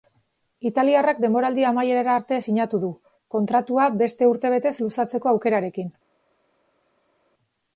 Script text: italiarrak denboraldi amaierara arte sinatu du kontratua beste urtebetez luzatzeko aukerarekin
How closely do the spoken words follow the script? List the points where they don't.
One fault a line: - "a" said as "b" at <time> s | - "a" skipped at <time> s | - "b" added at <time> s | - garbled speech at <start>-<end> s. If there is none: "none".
none